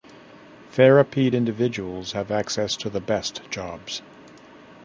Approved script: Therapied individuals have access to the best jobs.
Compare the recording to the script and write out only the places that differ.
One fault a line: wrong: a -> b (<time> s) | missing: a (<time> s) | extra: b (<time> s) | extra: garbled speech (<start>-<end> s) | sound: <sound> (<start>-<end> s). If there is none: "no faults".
no faults